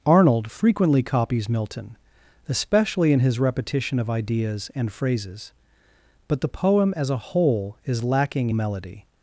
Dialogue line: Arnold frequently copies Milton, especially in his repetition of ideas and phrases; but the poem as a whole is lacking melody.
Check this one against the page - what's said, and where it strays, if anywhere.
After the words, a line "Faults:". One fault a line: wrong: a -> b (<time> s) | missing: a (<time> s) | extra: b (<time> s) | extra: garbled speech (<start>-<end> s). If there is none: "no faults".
Arnold frequently copies Milton, especially in his repetition of ideas and phrases; but the poem as a whole is lacking melody.
Faults:
no faults